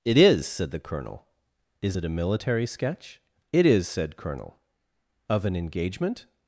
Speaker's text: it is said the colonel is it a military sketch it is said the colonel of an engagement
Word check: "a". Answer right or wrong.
right